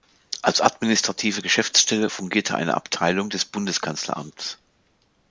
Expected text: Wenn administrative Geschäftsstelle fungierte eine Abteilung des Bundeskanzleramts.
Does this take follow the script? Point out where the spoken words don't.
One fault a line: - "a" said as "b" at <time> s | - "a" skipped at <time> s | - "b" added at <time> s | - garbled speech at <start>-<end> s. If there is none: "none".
- "Wenn" said as "Als" at 0.4 s